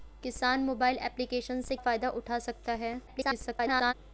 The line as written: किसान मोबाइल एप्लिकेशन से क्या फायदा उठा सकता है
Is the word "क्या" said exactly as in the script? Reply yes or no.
no